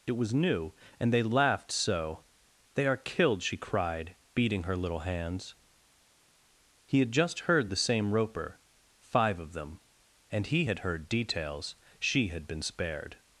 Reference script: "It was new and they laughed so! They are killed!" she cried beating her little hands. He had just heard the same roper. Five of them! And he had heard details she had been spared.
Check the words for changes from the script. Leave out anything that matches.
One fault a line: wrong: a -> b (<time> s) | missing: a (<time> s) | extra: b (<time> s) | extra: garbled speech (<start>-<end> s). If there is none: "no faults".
no faults